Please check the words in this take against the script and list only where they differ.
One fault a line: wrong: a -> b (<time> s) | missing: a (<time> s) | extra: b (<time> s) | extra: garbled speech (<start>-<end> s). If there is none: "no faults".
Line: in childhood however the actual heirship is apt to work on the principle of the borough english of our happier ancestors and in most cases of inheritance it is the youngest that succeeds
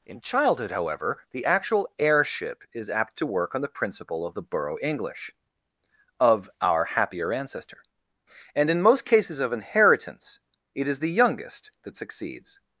wrong: ancestors -> ancestor (7.3 s)